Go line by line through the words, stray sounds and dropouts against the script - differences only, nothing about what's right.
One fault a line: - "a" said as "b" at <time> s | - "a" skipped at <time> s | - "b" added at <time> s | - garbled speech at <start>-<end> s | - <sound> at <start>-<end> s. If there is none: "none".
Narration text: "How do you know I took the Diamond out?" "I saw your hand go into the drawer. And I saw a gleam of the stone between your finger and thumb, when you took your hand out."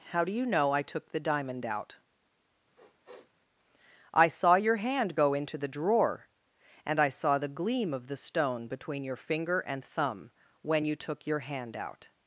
- sniff at 2.7-3.3 s
- "a" said as "the" at 7.4 s